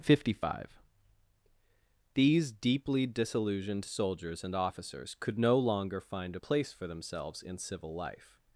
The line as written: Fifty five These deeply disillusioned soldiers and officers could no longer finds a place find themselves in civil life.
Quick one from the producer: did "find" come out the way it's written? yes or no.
no